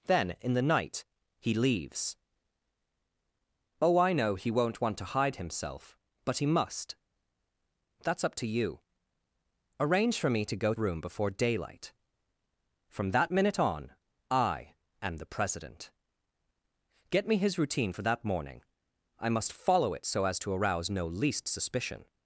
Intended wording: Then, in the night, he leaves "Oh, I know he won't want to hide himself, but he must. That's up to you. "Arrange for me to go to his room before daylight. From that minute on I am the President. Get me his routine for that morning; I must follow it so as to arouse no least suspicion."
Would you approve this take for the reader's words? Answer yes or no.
no